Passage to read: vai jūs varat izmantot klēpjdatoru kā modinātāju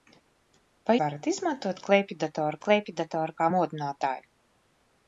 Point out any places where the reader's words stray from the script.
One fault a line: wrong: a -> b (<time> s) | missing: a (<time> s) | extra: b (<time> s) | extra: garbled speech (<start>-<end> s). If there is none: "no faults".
missing: jūs (0.9 s)
extra: klēpjdatoru (2.6 s)